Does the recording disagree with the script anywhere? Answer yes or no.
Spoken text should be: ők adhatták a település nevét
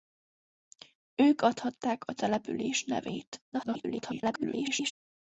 yes